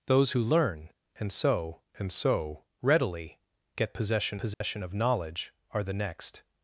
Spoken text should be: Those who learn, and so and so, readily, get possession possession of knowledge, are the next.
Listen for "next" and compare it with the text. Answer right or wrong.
right